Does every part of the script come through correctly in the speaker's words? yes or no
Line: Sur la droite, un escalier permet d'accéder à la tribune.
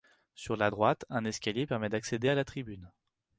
yes